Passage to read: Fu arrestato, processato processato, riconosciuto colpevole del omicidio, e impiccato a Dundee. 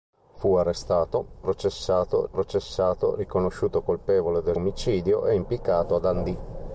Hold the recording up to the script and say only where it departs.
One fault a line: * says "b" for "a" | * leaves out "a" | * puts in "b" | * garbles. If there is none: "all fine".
all fine